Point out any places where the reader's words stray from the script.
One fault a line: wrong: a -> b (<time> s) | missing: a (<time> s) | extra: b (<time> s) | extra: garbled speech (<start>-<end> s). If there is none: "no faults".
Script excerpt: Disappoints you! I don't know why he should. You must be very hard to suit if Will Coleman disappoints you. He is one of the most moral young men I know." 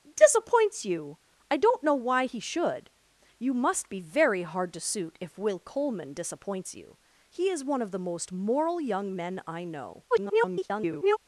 extra: garbled speech (10.1-11.2 s)